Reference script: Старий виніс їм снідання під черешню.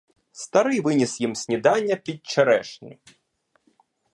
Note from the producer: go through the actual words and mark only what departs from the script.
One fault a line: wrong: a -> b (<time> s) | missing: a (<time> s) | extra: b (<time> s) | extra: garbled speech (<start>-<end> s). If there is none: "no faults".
no faults